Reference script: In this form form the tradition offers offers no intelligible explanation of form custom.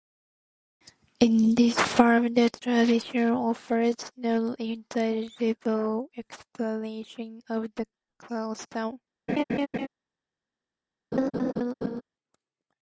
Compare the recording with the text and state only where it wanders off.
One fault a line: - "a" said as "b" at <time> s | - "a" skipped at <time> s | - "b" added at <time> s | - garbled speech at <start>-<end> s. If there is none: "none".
- "form" skipped at 2.3 s
- "offers" skipped at 4.0 s
- "form" said as "the" at 7.7 s